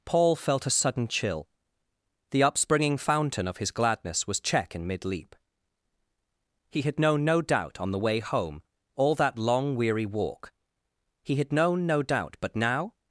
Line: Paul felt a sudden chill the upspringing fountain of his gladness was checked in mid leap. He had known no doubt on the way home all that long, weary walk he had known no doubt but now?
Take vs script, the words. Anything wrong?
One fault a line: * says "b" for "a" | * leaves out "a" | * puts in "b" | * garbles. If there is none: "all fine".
* says "check" for "checked"